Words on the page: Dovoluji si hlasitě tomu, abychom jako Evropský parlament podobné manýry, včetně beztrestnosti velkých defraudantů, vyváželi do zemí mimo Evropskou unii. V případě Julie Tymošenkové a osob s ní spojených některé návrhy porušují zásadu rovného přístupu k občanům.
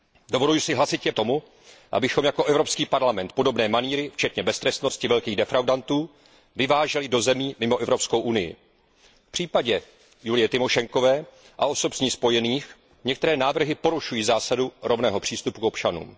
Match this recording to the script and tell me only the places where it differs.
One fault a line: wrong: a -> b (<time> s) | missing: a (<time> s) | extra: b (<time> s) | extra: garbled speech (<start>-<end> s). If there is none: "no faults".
no faults